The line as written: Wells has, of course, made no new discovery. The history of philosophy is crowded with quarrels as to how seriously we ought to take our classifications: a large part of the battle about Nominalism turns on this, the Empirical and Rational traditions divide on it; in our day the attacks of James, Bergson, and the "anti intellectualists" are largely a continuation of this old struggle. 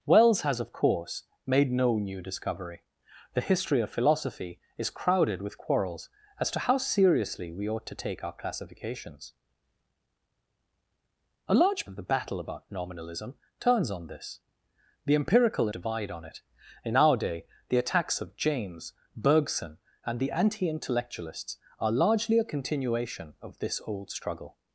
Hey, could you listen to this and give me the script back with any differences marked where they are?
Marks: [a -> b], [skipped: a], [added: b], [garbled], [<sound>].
Wells has, of course, made no new discovery. The history of philosophy is crowded with quarrels as to how seriously we ought to take our classifications: a large [skipped: part] of the battle about Nominalism turns on this, the Empirical [skipped: and Rational traditions] divide on it; in our day the attacks of James, Bergson, and the "anti intellectualists" are largely a continuation of this old struggle.